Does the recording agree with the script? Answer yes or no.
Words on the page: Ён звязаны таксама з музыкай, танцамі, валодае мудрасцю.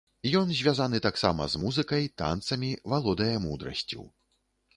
yes